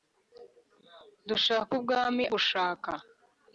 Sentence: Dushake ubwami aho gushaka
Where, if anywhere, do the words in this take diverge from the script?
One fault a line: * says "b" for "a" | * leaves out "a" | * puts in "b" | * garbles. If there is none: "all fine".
* leaves out "aho"